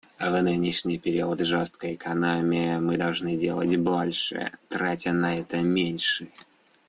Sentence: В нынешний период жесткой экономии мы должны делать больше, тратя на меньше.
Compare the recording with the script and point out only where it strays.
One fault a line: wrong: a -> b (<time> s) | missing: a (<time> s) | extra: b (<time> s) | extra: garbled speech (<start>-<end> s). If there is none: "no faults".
extra: это (5.4 s)